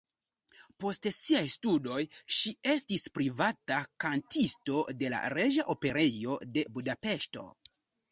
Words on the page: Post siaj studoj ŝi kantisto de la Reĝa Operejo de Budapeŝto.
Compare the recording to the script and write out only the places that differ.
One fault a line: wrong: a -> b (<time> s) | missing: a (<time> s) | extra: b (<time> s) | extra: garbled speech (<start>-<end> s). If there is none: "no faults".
extra: estis privata (2.7 s)